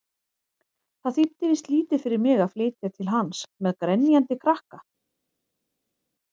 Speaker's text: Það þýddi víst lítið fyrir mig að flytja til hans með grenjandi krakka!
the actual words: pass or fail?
pass